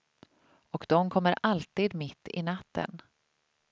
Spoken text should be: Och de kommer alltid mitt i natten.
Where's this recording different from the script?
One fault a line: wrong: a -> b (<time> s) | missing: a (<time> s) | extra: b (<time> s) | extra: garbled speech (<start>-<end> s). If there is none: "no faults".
no faults